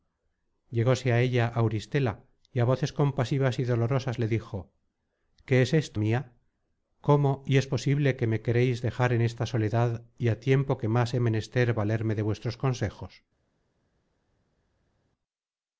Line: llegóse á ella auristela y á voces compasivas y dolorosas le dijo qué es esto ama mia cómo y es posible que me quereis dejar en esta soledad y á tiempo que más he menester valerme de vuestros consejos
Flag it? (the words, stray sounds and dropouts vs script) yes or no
yes